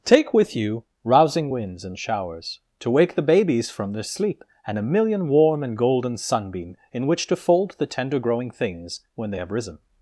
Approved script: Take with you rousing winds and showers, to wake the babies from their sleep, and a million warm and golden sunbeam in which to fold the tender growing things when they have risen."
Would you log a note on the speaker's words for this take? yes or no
no